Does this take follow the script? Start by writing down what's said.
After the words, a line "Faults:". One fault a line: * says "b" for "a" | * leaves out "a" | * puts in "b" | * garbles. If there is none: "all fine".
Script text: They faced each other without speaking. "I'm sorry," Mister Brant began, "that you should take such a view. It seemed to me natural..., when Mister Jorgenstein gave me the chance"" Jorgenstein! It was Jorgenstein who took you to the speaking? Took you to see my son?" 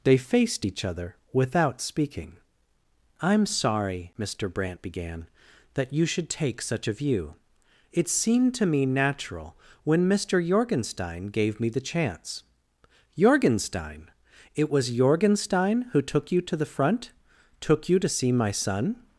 They faced each other without speaking. "I'm sorry," Mister Brant began, "that you should take such a view. It seemed to me natural..., when Mister Jorgenstein gave me the chance"" Jorgenstein! It was Jorgenstein who took you to the front? Took you to see my son?"
Faults:
* says "front" for "speaking"